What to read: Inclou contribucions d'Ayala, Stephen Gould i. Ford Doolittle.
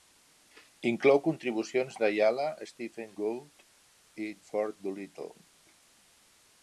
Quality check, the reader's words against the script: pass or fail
pass